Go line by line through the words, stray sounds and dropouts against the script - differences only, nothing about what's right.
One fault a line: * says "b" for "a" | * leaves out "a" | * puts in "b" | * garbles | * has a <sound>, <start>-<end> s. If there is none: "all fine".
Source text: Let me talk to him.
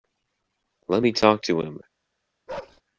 * has a bark, 2.5-2.8 s